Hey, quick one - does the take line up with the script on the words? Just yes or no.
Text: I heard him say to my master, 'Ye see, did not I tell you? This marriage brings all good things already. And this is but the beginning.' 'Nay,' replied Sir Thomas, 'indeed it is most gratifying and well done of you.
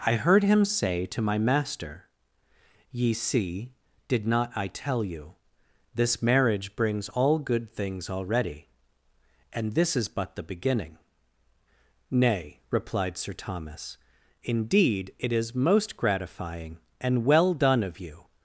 yes